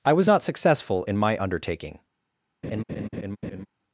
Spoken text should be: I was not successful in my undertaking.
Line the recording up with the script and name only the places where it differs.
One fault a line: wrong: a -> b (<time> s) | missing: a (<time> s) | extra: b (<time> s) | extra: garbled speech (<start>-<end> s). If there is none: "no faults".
no faults